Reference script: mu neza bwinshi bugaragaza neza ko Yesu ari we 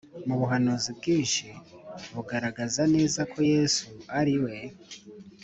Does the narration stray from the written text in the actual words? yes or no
yes